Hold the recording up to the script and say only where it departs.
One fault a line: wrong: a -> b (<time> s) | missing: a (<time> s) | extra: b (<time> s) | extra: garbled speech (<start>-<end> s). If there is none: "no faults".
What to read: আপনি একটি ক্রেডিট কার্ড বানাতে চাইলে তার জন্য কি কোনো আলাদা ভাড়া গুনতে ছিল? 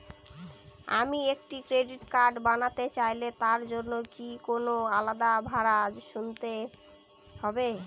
wrong: আপনি -> আমি (1.0 s)
wrong: ছিল -> হবে (7.3 s)